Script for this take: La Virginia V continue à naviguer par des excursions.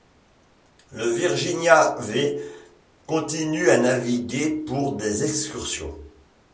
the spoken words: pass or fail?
fail